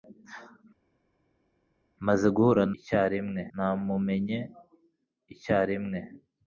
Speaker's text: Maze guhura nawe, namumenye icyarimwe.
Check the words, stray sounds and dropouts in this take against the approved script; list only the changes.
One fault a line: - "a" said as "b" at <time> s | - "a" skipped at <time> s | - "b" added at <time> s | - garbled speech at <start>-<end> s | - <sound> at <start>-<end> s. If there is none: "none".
- "nawe" said as "icyarimwe" at 2.8 s